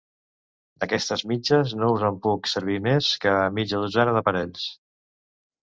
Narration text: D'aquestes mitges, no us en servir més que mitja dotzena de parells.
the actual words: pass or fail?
fail